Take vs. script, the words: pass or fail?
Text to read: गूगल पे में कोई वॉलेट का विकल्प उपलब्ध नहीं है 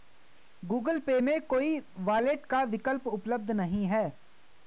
pass